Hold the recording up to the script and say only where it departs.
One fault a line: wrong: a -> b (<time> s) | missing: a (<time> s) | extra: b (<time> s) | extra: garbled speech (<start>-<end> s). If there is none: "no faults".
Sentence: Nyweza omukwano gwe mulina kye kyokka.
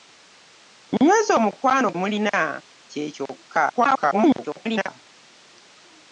missing: gwe (1.9 s)
extra: garbled speech (3.7-4.9 s)